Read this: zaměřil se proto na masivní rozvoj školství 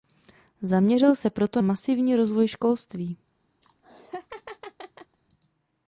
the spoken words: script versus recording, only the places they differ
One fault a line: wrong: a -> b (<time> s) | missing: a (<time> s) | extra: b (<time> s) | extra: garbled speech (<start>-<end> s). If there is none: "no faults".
missing: na (1.6 s)